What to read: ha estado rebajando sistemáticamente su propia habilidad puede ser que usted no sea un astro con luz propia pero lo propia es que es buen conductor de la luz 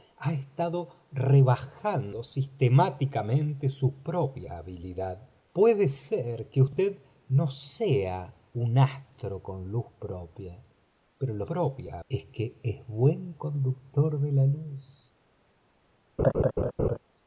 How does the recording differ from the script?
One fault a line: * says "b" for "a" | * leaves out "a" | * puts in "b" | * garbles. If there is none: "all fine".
all fine